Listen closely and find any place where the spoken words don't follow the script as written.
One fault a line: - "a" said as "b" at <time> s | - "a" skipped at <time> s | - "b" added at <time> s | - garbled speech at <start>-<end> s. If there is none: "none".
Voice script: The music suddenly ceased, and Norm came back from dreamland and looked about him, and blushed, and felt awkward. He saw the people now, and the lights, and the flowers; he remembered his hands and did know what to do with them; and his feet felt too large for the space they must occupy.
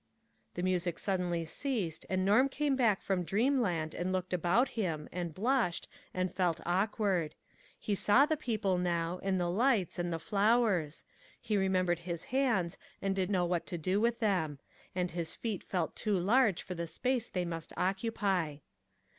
none